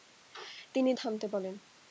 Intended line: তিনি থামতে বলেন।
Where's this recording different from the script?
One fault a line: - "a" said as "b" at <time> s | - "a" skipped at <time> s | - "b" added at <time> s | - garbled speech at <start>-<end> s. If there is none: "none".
none